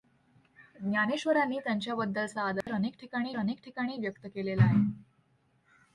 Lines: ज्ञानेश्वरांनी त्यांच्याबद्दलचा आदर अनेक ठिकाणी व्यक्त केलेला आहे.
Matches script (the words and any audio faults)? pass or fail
fail